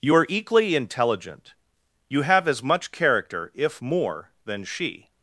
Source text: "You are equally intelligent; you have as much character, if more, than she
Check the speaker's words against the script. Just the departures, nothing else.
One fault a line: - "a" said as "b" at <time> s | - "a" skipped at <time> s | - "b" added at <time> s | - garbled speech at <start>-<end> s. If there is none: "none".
none